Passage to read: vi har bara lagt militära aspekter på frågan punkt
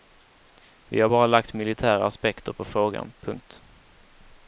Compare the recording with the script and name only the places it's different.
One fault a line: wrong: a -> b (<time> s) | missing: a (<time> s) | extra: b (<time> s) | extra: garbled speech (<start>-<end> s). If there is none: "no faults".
no faults